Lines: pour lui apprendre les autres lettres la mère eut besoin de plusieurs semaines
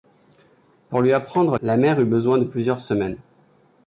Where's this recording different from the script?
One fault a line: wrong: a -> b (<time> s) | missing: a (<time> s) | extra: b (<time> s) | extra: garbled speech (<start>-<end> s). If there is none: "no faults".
missing: les autres lettres (1.6 s)